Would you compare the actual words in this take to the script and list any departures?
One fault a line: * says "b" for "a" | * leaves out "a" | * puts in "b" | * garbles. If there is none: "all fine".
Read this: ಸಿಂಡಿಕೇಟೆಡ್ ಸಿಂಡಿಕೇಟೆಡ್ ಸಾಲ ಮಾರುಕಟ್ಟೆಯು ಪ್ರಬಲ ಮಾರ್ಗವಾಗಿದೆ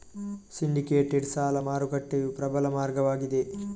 * leaves out "ಸಿಂಡಿಕೇಟೆಡ್"